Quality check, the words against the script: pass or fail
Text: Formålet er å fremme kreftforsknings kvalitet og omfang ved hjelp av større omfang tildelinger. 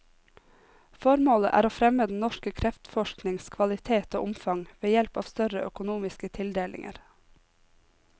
fail